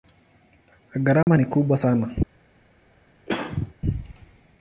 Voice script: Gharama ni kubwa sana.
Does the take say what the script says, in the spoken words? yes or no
yes